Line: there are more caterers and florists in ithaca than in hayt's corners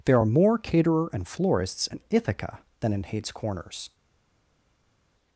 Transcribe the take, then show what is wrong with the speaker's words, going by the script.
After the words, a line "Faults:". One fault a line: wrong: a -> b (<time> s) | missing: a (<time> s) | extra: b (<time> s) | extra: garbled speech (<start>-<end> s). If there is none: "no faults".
there are more caterer and florists in ithaca than in hayt's corners
Faults:
wrong: caterers -> caterer (0.6 s)